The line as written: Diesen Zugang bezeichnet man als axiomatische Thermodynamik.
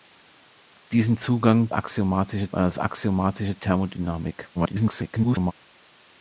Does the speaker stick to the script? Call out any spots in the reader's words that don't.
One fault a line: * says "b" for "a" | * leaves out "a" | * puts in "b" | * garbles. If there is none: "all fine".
* says "axiomatische" for "bezeichnet"
* garbles